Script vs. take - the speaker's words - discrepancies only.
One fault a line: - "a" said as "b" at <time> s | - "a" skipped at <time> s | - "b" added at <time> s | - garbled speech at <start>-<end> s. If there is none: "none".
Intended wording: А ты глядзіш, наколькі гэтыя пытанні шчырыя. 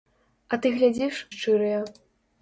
- "наколькі гэтыя пытанні" skipped at 1.2 s